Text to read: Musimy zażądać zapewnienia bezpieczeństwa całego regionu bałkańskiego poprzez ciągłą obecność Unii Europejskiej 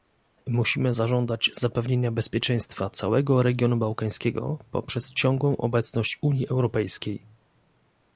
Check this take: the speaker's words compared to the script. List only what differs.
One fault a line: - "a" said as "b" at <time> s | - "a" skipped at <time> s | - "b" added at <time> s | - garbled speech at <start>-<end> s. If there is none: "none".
none